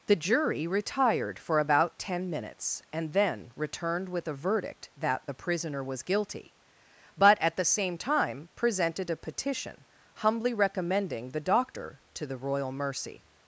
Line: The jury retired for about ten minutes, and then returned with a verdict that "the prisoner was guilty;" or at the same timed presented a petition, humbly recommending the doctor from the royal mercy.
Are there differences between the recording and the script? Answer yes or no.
yes